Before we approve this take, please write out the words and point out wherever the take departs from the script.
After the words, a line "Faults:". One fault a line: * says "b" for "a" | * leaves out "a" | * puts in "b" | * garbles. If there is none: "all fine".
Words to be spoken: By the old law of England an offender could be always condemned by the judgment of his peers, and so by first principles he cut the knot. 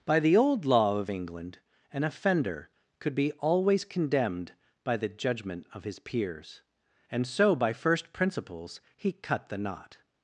By the old law of England an offender could be always condemned by the judgment of his peers, and so by first principles he cut the knot.
Faults:
all fine